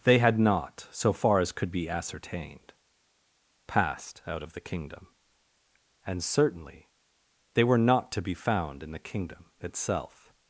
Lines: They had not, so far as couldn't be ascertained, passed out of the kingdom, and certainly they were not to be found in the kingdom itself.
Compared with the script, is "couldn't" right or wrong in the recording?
wrong